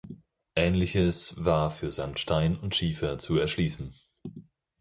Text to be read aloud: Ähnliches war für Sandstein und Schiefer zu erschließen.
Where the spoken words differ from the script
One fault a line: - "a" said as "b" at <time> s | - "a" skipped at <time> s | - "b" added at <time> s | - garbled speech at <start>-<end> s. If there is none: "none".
none